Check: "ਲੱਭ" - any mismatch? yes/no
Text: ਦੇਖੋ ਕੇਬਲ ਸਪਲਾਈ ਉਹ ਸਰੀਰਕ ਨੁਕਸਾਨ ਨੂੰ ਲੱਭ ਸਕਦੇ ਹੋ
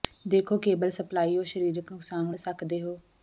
yes